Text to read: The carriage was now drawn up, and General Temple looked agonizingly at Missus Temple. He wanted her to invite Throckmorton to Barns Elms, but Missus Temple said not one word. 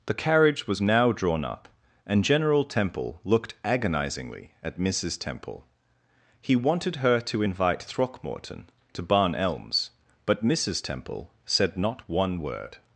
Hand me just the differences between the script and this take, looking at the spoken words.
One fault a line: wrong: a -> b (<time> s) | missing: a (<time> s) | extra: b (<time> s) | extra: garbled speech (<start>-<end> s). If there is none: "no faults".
wrong: Barns -> Barn (9.0 s)